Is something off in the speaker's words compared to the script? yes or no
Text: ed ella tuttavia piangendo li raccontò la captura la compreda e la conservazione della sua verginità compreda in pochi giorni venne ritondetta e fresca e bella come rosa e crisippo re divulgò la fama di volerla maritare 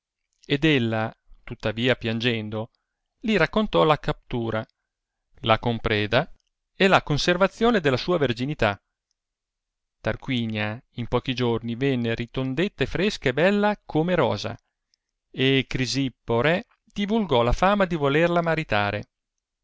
yes